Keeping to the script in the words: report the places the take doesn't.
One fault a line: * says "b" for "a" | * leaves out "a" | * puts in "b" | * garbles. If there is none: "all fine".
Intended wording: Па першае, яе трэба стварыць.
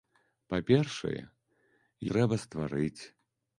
* leaves out "яе"